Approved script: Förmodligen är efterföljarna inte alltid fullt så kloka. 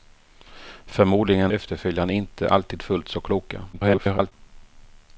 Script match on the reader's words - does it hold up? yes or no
no